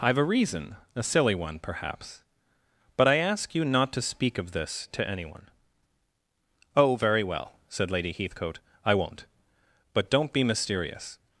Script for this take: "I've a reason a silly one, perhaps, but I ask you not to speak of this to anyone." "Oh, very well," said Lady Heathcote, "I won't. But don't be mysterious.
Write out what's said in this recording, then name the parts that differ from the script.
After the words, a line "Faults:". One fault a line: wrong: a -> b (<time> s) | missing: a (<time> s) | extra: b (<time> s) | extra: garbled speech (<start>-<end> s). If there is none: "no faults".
"I've a reason a silly one, perhaps, but I ask you not to speak of this to anyone." "Oh, very well," said Lady Heathcote, "I won't. But don't be mysterious.
Faults:
no faults